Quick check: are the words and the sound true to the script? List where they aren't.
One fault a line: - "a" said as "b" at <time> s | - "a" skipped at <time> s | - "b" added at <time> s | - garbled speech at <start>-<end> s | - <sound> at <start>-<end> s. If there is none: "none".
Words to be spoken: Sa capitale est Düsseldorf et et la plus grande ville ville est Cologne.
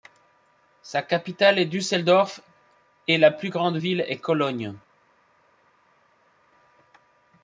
- "et" skipped at 3.2 s
- "ville" skipped at 4.0 s